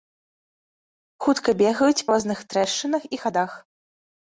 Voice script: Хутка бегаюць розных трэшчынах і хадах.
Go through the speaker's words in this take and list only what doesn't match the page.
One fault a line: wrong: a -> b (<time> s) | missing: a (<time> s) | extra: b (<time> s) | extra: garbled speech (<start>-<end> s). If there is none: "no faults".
no faults